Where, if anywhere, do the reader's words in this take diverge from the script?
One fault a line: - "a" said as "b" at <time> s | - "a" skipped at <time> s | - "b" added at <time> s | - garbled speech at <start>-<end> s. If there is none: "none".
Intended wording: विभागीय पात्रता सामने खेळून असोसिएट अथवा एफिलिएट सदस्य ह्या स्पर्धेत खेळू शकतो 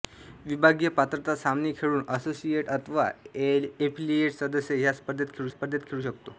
- "स्पर्धेत खेळू" added at 5.5 s